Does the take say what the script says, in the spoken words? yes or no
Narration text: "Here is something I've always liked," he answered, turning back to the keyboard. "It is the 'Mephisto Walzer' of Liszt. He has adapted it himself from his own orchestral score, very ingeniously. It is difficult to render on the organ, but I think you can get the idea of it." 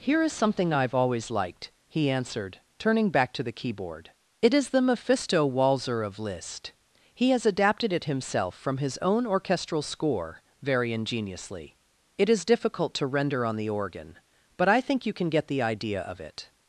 yes